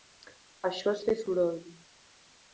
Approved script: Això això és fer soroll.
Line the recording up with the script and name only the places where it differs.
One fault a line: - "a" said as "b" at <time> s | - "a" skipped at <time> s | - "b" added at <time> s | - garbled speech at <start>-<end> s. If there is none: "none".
- "això" skipped at 0.9 s